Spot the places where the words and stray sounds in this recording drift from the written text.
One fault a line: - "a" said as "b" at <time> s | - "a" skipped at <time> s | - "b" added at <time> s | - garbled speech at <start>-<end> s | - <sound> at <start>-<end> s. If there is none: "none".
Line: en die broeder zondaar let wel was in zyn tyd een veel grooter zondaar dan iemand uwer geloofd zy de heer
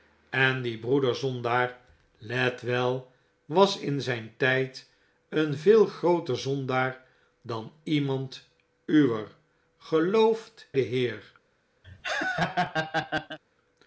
- "zy" skipped at 10.7 s
- laugh at 11.8-13.4 s